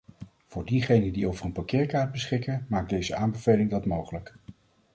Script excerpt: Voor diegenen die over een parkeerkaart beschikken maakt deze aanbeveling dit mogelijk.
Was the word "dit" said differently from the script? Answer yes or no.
yes